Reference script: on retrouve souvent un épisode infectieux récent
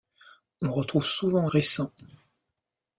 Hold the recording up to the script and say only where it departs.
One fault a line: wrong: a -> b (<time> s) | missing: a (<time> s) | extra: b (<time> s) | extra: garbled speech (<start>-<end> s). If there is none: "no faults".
missing: un épisode infectieux (1.5 s)